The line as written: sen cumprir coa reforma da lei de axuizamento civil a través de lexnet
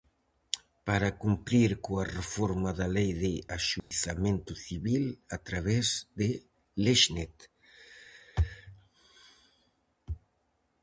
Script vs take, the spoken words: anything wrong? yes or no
yes